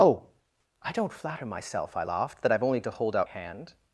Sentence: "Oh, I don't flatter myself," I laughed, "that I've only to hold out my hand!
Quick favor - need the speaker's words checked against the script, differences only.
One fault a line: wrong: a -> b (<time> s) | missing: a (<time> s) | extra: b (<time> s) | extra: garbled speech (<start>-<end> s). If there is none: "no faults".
missing: my (3.3 s)